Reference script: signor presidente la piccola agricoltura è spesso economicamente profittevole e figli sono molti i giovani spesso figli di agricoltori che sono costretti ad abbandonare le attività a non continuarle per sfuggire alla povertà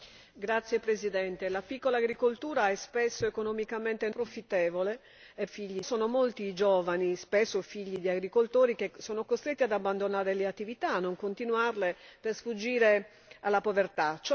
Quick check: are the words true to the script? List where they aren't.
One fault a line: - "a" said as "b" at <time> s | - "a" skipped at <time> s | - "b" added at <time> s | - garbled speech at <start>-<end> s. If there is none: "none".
none